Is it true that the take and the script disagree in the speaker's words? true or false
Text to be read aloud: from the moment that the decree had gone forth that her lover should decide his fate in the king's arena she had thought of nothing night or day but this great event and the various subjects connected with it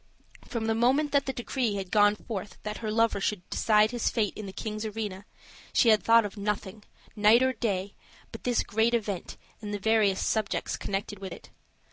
false